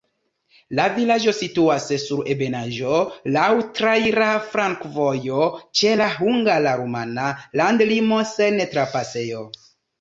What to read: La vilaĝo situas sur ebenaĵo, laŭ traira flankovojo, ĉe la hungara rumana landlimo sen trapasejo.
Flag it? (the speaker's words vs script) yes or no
no